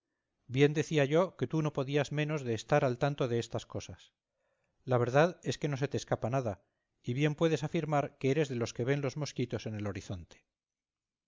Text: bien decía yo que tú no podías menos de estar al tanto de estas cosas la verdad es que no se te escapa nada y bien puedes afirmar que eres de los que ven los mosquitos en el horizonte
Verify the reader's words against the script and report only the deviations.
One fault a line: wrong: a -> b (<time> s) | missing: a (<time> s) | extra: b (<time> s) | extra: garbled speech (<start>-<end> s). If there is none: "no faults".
no faults